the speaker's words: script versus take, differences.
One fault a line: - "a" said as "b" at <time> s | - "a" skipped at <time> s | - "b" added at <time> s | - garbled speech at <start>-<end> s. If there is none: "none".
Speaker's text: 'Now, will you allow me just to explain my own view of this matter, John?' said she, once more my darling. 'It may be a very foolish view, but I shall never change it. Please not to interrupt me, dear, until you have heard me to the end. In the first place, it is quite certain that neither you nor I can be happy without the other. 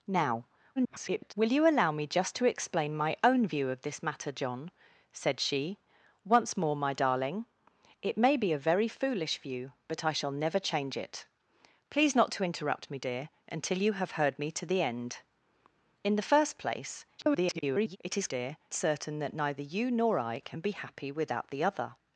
- garbled speech at 0.8-1.3 s
- garbled speech at 17.2-18.0 s
- "quite" said as "dear" at 18.3 s